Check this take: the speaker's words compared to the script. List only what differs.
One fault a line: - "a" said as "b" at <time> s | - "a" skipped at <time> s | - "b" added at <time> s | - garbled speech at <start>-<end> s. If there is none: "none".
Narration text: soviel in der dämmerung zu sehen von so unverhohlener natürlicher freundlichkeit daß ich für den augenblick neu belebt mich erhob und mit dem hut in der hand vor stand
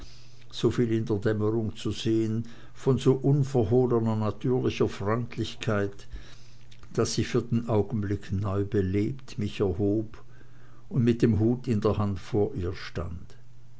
- "ihr" added at 12.6 s